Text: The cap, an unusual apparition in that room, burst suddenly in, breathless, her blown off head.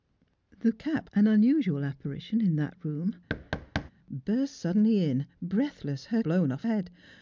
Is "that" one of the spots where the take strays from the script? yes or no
no